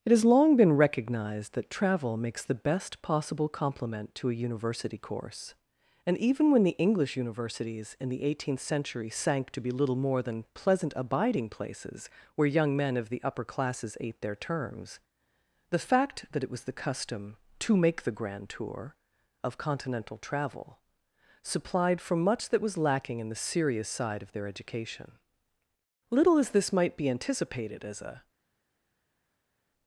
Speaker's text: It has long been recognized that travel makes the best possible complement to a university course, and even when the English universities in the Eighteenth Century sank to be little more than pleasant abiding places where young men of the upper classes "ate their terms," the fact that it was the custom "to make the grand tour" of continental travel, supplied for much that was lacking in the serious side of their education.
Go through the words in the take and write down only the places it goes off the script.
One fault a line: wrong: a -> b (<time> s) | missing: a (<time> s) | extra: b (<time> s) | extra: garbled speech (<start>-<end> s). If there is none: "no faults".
extra: Little as this might be anticipated as a (26.1 s)